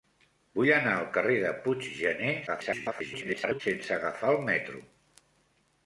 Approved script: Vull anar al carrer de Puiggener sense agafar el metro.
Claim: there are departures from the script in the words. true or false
true